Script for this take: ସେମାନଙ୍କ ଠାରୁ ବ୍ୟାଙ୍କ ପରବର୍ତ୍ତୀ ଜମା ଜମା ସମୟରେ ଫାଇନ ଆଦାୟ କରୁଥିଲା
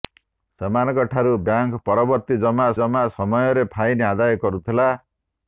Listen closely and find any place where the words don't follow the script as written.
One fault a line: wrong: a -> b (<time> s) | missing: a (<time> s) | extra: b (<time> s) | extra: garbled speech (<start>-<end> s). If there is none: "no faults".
no faults